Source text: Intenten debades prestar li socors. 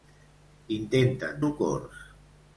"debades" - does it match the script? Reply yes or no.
no